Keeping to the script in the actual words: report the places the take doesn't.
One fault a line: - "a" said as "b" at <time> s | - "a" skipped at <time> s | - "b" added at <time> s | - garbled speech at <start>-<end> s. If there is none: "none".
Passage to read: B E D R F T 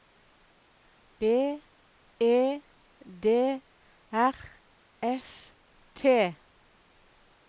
none